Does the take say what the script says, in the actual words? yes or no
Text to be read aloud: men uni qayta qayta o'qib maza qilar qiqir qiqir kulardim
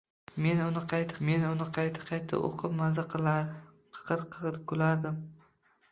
no